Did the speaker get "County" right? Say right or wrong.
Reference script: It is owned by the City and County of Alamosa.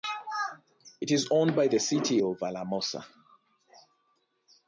wrong